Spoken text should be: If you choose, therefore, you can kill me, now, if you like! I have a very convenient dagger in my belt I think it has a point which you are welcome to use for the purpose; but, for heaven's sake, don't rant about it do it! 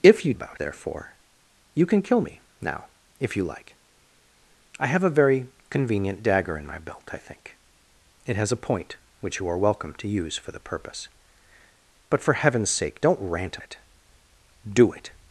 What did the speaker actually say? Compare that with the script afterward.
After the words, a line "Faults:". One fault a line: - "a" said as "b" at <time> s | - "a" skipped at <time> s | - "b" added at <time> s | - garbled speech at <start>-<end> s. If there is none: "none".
If you about, therefore, you can kill me, now, if you like! I have a very convenient dagger in my belt I think it has a point which you are welcome to use for the purpose; but, for heaven's sake, don't rant it do it!
Faults:
- "choose" said as "about" at 0.3 s
- "about" skipped at 13.6 s